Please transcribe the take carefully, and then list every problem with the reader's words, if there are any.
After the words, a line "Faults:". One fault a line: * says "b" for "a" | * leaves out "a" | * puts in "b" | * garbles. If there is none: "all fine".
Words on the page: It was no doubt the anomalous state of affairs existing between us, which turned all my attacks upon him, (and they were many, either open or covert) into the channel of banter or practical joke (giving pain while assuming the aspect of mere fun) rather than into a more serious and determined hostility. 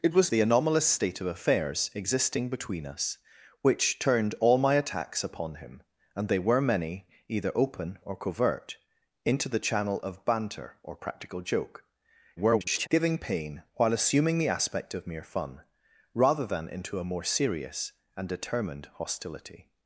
It was the anomalous state of affairs existing between us, which turned all my attacks upon him, (and they were many, either open or covert) into the channel of banter or practical joke [garbled] (giving pain while assuming the aspect of mere fun) rather than into a more serious and determined hostility.
Faults:
* leaves out "no doubt"
* garbles